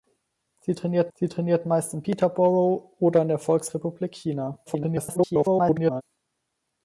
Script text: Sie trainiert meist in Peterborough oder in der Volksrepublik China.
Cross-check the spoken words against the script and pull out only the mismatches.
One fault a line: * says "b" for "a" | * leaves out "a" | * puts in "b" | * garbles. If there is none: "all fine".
* puts in "sie trainiert"
* garbles